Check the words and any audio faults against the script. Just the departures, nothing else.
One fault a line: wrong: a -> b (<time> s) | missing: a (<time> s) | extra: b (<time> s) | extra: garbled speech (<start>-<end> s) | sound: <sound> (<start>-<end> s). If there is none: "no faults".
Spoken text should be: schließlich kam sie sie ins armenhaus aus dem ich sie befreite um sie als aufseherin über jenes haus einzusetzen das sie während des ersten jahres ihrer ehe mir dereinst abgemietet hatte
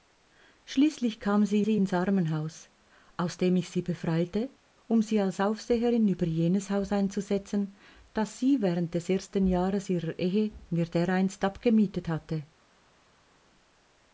no faults